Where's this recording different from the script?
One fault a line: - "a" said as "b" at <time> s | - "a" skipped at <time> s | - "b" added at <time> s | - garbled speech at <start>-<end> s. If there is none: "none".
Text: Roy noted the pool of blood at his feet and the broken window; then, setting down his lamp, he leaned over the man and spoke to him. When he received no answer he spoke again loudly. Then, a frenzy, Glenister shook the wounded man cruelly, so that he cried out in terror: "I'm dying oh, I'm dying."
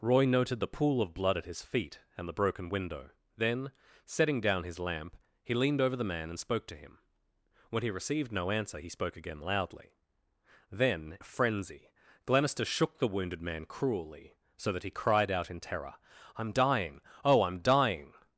none